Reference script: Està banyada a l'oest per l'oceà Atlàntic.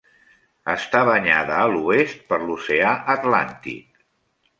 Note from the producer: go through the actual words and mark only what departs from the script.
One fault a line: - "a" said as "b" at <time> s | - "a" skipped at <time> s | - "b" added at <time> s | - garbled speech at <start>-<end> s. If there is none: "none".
none